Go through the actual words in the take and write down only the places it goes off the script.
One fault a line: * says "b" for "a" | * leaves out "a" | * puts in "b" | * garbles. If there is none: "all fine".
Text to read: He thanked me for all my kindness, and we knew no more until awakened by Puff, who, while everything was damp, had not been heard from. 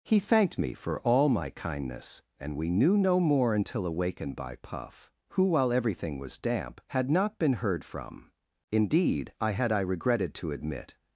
* puts in "Indeed I had I regretted to admit"